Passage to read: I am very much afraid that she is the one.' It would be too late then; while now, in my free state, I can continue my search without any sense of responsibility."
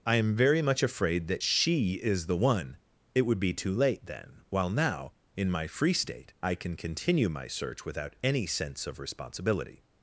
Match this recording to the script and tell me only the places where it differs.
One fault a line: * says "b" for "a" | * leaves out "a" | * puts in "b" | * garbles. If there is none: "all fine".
all fine